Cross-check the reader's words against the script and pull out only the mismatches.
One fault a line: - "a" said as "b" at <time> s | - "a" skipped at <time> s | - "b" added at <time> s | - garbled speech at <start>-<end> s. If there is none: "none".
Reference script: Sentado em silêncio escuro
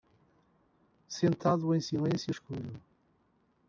none